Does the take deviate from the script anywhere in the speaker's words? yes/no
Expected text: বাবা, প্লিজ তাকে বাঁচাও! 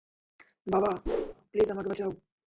yes